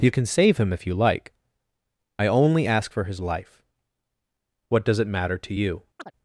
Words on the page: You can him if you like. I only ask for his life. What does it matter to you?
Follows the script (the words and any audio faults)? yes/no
no